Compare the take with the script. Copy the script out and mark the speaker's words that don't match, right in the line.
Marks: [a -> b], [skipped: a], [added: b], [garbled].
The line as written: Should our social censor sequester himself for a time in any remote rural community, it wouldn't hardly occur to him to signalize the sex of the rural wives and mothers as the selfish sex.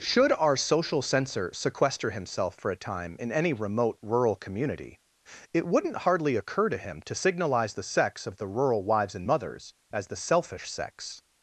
Should our social censor sequester himself for a time in any remote rural community, it wouldn't hardly occur to him to signalize the sex of the rural wives and mothers as the selfish sex.